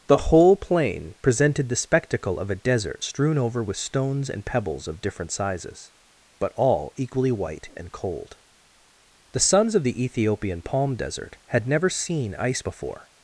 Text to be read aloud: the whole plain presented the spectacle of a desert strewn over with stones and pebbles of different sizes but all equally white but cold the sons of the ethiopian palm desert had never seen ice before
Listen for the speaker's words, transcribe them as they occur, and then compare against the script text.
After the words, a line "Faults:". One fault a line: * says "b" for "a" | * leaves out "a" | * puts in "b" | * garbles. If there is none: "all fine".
the whole plain presented the spectacle of a desert strewn over with stones and pebbles of different sizes but all equally white and cold the sons of the ethiopian palm desert had never seen ice before
Faults:
* says "and" for "but"